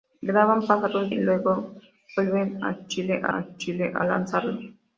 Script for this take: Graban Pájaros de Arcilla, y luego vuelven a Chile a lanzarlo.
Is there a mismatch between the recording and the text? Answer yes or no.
yes